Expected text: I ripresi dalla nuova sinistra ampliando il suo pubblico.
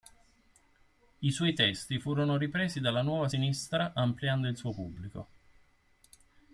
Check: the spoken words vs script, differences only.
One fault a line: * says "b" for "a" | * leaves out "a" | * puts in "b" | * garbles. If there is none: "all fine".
* puts in "suoi testi furono"